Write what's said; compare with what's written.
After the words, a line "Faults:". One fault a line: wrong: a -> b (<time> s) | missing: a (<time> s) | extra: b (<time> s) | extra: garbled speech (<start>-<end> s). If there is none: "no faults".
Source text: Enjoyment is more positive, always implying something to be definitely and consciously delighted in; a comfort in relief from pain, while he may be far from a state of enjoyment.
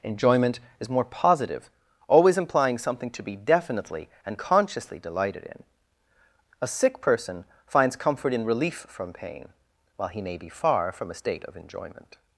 Enjoyment is more positive, always implying something to be definitely and consciously delighted in; a sick person finds comfort in relief from pain, while he may be far from a state of enjoyment.
Faults:
extra: sick person finds (6.7 s)